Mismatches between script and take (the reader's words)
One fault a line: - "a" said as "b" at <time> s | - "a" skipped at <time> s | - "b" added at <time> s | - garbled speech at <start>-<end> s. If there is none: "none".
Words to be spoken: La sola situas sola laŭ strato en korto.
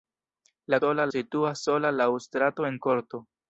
none